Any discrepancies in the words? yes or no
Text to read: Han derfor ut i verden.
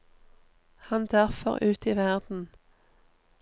no